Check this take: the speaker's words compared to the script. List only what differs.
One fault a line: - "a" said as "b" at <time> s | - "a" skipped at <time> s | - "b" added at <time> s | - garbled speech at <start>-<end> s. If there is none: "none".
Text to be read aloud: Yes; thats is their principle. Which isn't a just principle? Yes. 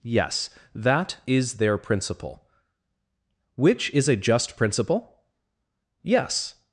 - "thats" said as "that" at 0.7 s
- "isn't" said as "is" at 3.9 s